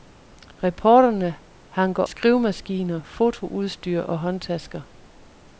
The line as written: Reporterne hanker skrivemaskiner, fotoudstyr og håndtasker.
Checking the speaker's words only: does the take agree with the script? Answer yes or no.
yes